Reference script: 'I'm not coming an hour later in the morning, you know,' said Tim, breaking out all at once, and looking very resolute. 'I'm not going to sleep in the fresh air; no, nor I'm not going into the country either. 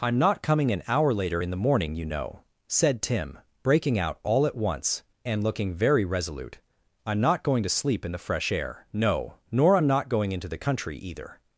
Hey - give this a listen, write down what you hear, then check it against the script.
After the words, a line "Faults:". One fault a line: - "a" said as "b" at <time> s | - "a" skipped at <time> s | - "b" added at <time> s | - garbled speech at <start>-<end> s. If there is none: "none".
'I'm not coming an hour later in the morning, you know,' said Tim, breaking out all at once, and looking very resolute. 'I'm not going to sleep in the fresh air; no, nor I'm not going into the country either.
Faults:
none